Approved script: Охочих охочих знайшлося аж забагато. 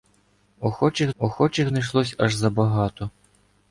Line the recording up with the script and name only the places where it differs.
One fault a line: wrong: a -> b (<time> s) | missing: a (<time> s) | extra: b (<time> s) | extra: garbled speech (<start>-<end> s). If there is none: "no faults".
no faults